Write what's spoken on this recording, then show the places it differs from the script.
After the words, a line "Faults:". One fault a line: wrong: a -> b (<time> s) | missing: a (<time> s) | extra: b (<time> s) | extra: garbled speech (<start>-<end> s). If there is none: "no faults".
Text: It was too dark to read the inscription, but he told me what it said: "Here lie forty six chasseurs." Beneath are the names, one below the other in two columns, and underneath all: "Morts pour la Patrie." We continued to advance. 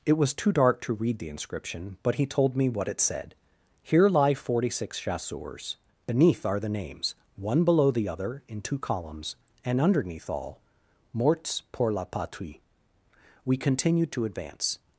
It was too dark to read the inscription, but he told me what it said: "Here lie forty six chasseurs." Beneath are the names, one below the other in two columns, and underneath all: "Morts pour la Patrie." We continued to advance.
Faults:
no faults